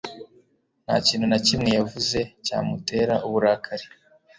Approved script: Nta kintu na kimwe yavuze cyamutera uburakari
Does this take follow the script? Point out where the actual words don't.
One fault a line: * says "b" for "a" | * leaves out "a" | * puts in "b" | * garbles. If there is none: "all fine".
all fine